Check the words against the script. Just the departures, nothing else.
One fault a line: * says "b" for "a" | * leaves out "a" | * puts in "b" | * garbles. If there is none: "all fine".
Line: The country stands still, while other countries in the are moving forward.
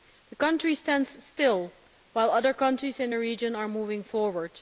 * puts in "region"